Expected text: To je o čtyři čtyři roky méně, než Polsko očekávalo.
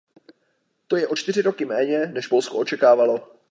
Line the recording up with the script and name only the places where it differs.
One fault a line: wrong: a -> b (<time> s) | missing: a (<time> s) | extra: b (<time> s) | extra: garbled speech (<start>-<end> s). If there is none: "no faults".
missing: čtyři (1.4 s)